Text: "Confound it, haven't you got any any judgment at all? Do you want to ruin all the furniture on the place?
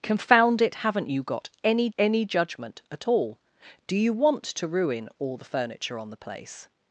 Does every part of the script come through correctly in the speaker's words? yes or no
yes